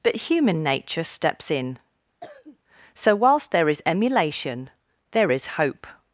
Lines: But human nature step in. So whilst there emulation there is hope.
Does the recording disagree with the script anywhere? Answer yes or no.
yes